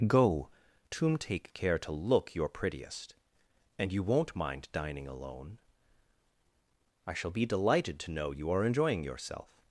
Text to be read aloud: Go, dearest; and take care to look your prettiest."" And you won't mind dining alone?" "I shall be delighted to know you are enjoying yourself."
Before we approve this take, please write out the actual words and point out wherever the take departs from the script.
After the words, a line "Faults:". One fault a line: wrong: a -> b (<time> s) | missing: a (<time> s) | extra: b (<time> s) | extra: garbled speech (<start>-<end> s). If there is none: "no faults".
Go, tomb take care to look your prettiest."" And you won't mind dining alone?" "I shall be delighted to know you are enjoying yourself."
Faults:
wrong: dearest and -> tomb (0.9 s)